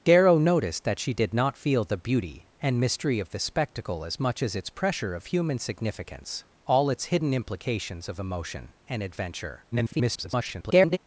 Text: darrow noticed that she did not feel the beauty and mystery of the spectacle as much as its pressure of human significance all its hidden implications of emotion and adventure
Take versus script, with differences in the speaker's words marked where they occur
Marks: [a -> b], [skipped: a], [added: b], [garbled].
darrow noticed that she did not feel the beauty and mystery of the spectacle as much as its pressure of human significance all its hidden implications of emotion and adventure [garbled]